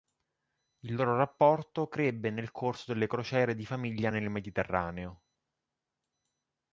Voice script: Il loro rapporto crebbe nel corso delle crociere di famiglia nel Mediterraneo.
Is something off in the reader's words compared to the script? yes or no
no